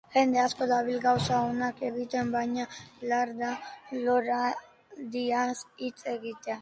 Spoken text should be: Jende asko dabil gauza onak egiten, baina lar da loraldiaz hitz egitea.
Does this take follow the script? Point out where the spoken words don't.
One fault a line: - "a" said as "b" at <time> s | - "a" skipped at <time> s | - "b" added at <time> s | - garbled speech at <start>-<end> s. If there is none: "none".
none